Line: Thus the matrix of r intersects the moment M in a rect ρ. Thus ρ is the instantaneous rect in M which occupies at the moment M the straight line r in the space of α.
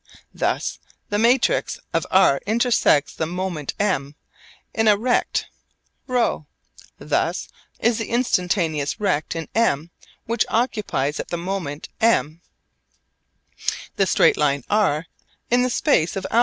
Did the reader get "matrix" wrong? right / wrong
right